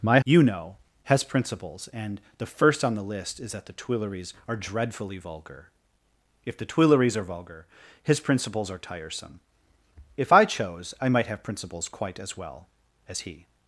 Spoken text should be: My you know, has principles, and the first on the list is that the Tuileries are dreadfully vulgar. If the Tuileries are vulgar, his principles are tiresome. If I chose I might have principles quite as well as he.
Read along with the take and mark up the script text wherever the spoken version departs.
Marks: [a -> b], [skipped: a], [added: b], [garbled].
My you know, has principles, and the first on the list is that the Tuileries are dreadfully vulgar. If the Tuileries are vulgar, his principles are tiresome. If I chose I might have principles quite as well as he.